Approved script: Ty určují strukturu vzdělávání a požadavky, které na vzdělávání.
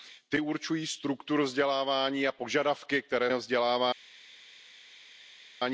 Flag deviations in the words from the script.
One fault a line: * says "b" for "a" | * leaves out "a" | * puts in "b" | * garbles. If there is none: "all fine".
all fine